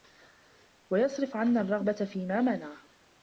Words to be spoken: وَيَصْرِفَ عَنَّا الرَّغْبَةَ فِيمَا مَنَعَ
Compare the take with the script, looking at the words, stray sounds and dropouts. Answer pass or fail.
pass